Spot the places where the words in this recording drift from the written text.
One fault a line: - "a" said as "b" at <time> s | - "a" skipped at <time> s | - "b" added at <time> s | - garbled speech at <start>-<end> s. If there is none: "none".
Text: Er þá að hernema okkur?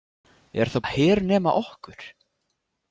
none